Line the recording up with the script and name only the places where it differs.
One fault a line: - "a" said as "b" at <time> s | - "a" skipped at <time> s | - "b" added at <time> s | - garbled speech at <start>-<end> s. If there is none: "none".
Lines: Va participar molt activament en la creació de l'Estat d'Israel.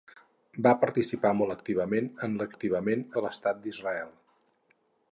- "creació" said as "activament" at 2.5 s